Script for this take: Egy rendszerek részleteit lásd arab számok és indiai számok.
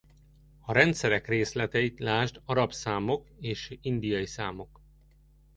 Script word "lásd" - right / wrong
right